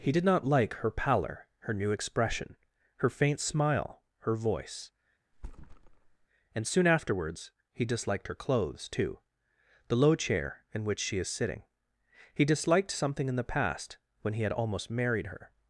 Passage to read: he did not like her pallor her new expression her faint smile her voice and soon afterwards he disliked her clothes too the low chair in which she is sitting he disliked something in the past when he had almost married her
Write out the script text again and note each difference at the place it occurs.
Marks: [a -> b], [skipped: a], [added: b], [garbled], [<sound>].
he did not like her pallor her new expression her faint smile her voice [thud] and soon afterwards he disliked her clothes too the low chair in which she is sitting he disliked something in the past when he had almost married her